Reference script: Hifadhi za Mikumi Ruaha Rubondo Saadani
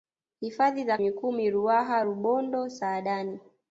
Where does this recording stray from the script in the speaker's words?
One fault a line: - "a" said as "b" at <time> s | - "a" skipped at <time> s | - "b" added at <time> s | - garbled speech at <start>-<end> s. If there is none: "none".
none